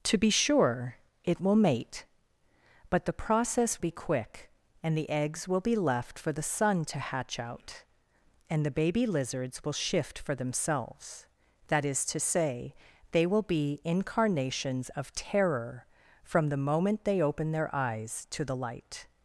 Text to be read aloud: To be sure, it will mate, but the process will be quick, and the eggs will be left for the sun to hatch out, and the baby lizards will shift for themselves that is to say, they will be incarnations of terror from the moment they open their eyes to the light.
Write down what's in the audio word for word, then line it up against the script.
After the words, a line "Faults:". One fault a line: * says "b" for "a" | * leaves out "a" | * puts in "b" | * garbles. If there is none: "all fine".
To be sure, it will mate, but the process be quick, and the eggs will be left for the sun to hatch out, and the baby lizards will shift for themselves that is to say, they will be incarnations of terror from the moment they open their eyes to the light.
Faults:
* leaves out "will"